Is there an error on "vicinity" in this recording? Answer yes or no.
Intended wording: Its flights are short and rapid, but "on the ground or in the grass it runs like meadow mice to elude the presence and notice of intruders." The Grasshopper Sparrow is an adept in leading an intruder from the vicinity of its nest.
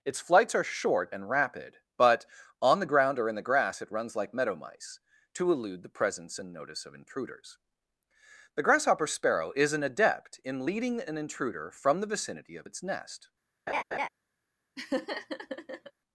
no